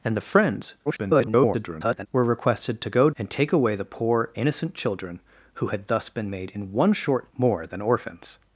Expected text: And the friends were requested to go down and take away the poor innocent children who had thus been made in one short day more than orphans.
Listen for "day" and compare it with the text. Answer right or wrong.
wrong